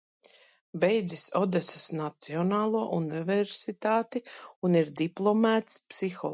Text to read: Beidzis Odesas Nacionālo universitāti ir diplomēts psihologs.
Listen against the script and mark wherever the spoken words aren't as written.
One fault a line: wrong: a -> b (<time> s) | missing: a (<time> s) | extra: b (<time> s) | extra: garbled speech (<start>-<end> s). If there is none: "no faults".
extra: un (4.7 s)